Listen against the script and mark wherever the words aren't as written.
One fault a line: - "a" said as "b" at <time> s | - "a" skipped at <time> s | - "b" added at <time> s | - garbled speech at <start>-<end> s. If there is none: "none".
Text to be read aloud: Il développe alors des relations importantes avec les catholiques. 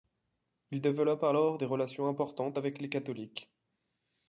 none